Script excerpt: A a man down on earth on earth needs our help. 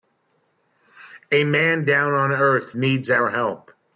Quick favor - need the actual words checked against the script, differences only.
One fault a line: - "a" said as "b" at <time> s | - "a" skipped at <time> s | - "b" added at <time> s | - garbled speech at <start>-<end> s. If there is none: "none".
- "a" skipped at 1.4 s
- "on earth" skipped at 2.8 s